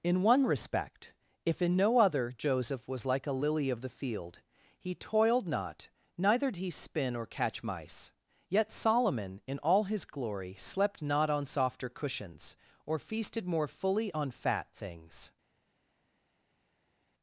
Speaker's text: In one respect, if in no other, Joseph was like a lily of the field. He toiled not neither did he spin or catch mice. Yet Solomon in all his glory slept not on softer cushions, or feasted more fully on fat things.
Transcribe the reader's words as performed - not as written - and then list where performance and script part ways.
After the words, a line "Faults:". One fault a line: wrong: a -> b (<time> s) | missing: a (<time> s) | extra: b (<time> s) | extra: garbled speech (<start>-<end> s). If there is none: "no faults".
In one respect, if in no other, Joseph was like a lily of the field. He toiled not neither he spin or catch mice. Yet Solomon in all his glory slept not on softer cushions, or feasted more fully on fat things.
Faults:
missing: did (6.5 s)